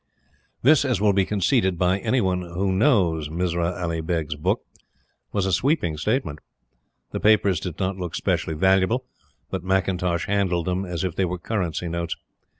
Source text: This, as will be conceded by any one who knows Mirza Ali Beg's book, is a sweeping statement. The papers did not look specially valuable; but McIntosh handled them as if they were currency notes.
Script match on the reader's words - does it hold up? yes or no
no